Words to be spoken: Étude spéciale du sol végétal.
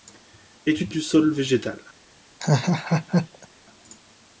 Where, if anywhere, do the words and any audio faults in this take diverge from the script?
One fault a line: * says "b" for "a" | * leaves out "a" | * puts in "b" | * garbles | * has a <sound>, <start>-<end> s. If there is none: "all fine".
* leaves out "spéciale"
* has a laugh, 2.4-3.5 s